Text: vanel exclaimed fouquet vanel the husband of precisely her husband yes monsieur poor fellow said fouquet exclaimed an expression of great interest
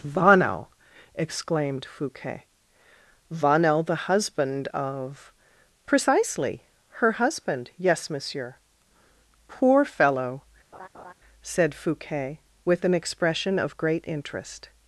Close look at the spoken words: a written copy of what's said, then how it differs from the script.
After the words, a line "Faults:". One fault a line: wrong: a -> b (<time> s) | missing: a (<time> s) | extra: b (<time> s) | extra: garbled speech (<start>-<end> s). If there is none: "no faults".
vanel exclaimed fouquet vanel the husband of precisely her husband yes monsieur poor fellow said fouquet with an expression of great interest
Faults:
wrong: exclaimed -> with (12.6 s)